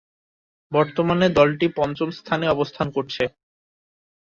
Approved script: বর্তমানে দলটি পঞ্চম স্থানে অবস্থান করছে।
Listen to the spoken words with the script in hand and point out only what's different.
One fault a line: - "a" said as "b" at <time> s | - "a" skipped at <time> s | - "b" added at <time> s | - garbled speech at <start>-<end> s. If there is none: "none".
none